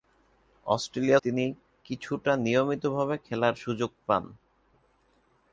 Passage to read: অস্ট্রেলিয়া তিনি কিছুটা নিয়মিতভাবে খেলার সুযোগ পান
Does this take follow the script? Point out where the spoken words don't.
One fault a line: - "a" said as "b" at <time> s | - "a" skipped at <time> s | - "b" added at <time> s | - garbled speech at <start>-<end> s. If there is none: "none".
none